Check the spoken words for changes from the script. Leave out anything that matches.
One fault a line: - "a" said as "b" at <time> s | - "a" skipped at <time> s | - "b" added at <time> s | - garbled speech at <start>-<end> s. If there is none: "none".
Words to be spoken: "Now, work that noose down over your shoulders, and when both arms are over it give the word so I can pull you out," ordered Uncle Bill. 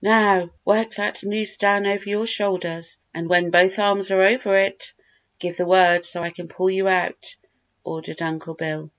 none